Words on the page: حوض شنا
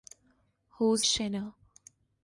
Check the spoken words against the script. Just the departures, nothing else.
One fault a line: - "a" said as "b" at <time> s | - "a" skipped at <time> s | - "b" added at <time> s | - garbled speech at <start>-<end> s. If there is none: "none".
none